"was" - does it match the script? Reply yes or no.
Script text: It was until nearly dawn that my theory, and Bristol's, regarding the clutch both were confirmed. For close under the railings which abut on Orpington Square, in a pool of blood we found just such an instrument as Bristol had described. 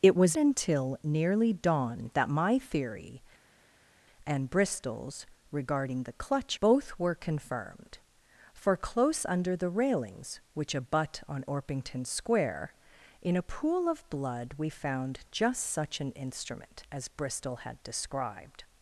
yes